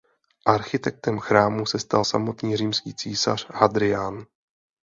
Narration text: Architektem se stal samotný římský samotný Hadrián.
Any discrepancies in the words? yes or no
yes